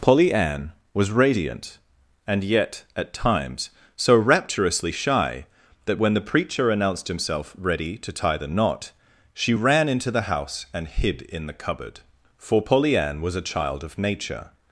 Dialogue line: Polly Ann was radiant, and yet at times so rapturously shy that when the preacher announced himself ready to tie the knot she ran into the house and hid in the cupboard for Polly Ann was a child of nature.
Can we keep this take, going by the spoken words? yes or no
yes